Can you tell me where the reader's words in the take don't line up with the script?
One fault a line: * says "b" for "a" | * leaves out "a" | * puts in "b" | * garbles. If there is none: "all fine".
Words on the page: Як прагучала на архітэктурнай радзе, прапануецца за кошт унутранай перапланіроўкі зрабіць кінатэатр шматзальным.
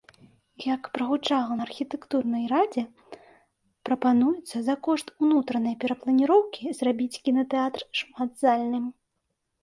all fine